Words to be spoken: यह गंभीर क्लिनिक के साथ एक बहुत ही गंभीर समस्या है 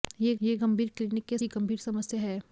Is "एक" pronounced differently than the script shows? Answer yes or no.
yes